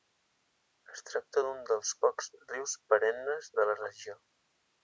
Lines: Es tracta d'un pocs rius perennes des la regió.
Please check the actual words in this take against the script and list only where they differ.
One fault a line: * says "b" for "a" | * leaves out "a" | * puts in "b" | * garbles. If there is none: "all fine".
* puts in "dels"
* says "de" for "des"